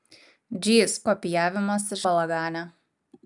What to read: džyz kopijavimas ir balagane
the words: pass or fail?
pass